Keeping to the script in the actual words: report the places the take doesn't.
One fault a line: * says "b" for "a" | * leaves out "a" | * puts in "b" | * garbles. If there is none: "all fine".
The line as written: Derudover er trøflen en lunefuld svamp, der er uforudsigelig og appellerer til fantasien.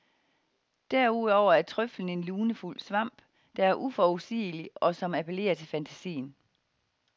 * puts in "som"